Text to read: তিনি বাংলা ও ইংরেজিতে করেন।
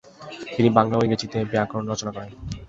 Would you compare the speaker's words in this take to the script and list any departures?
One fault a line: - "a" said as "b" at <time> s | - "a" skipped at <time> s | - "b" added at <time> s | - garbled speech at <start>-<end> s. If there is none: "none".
- "ব্যাকরণ রচনা" added at 1.5 s